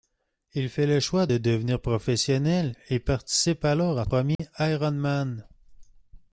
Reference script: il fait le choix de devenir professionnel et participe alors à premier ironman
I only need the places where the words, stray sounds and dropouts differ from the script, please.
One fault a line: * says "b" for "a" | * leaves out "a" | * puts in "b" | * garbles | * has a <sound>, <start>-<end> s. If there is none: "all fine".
* has a dropout, 4.3-4.4 s